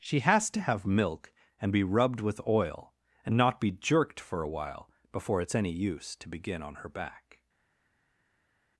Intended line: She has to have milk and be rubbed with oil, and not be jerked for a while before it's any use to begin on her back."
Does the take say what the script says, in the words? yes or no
yes